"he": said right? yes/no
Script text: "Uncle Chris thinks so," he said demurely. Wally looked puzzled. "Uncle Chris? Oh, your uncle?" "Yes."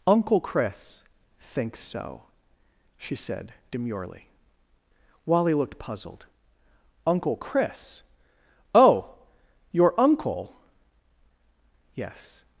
no